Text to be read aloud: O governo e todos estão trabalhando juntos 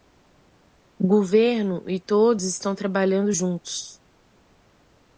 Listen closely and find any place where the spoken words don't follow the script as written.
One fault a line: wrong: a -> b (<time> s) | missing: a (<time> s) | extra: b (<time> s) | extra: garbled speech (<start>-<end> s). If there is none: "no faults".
no faults